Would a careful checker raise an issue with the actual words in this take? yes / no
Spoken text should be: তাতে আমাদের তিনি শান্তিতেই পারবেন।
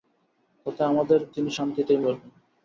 no